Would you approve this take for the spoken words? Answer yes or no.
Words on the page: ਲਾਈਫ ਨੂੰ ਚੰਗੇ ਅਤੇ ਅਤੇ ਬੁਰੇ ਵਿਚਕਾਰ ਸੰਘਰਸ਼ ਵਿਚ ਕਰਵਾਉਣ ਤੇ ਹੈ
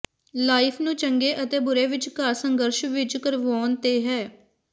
no